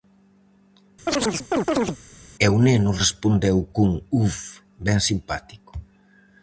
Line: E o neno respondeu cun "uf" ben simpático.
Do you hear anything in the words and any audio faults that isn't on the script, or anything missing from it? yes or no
yes